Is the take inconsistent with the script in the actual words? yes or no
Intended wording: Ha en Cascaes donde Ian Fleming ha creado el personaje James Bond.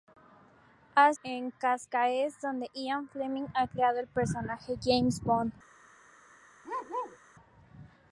no